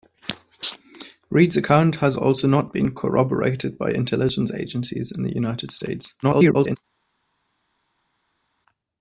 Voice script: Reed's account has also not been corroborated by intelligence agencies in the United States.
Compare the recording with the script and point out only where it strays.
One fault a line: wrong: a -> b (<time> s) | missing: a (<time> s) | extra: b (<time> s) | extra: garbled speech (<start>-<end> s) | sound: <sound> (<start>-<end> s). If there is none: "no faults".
extra: garbled speech (6.2-6.8 s)